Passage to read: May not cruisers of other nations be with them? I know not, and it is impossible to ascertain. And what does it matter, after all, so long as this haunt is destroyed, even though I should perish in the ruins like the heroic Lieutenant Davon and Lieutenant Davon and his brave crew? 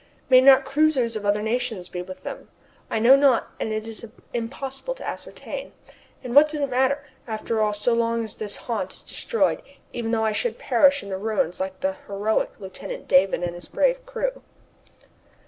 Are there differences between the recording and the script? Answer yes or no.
yes